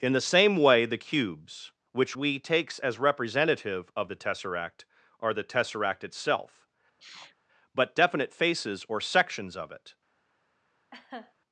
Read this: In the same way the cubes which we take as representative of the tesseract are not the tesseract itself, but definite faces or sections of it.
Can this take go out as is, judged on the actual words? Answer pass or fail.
fail